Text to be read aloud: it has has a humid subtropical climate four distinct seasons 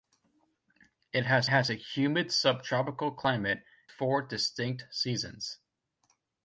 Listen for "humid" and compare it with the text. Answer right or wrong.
right